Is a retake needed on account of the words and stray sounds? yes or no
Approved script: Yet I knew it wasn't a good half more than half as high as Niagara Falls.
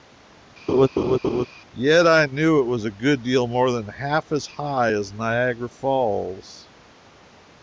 yes